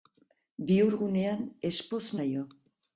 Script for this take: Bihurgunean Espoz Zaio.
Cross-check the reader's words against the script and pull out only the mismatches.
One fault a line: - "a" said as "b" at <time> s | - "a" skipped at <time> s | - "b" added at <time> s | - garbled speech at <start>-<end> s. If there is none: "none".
none